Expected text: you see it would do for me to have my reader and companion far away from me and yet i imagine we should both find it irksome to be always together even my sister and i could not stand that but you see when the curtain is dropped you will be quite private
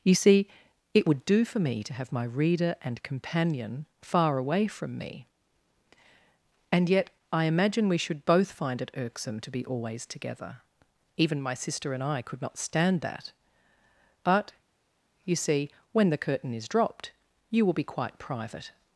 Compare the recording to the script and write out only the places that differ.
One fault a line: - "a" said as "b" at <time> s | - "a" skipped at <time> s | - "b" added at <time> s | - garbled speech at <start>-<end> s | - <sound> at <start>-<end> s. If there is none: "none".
none